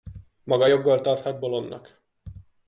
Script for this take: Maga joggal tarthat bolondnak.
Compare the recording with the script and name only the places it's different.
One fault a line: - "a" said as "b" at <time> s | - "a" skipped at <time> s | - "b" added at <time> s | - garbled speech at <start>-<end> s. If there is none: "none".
none